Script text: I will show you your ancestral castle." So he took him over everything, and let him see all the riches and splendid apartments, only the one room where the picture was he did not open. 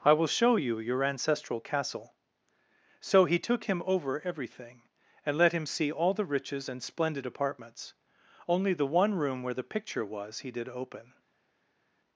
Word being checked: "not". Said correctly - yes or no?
no